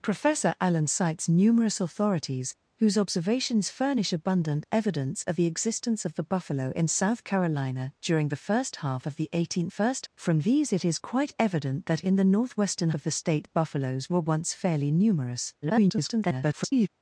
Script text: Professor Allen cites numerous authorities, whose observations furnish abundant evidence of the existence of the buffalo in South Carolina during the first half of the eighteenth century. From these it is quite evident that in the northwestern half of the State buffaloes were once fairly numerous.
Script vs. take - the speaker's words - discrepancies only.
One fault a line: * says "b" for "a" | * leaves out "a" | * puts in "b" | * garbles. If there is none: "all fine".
* says "first" for "century"
* leaves out "half"
* garbles